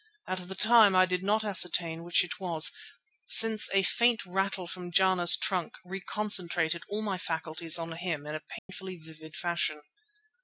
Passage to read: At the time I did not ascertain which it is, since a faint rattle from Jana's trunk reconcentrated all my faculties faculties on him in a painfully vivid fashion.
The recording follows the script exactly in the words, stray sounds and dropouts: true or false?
false